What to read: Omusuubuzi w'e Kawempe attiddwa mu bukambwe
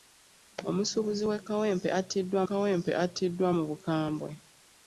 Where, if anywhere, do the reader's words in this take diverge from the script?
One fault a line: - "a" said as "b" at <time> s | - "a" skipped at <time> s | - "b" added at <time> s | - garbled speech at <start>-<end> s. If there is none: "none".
- "Kawempe attiddwa" added at 2.5 s